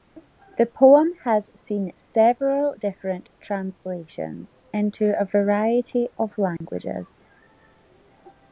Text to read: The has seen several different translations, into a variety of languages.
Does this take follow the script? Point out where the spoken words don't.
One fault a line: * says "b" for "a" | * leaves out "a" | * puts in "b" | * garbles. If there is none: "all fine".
* puts in "poem"